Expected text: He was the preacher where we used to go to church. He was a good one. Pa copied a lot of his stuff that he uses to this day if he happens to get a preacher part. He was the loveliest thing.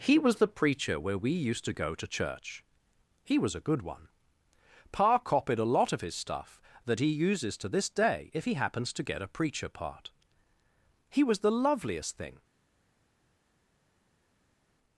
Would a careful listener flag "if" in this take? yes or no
no